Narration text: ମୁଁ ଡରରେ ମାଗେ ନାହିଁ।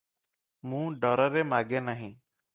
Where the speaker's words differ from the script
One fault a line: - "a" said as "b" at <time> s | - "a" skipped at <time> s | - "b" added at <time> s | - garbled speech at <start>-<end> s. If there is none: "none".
none